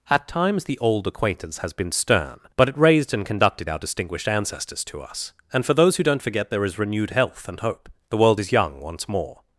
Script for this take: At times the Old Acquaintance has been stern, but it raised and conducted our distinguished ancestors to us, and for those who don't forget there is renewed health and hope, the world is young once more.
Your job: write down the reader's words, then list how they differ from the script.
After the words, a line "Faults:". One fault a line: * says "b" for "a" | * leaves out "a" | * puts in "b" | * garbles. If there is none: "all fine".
At times the Old Acquaintance has been stern, but it raised and conducted our distinguished ancestors to us, and for those who don't forget there is renewed health and hope, the world is young once more.
Faults:
all fine